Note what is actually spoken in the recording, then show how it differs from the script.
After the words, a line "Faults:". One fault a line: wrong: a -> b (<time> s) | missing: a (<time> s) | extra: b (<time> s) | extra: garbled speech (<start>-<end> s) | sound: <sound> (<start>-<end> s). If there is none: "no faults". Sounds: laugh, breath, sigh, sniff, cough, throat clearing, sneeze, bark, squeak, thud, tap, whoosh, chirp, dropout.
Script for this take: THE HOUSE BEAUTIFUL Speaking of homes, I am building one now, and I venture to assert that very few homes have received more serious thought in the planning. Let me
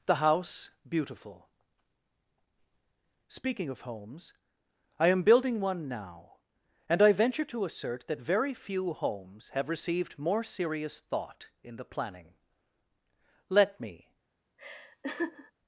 THE HOUSE BEAUTIFUL Speaking of homes, I am building one now, and I venture to assert that very few homes have received more serious thought in the planning. Let me
Faults:
sound: laugh (14.6-15.5 s)